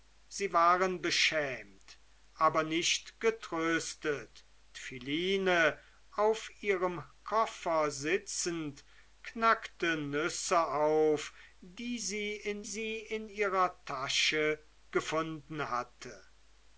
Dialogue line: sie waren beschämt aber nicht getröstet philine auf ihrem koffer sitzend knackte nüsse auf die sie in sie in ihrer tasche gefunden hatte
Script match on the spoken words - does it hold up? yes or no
yes